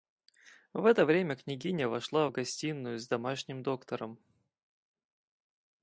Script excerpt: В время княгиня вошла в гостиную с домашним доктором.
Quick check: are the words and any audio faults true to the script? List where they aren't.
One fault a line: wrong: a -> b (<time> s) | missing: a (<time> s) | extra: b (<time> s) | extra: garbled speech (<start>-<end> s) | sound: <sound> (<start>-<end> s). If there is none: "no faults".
extra: это (0.8 s)